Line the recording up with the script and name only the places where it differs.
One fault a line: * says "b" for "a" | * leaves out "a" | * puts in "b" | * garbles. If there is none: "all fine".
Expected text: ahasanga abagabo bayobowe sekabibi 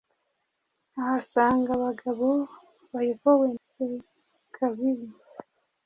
all fine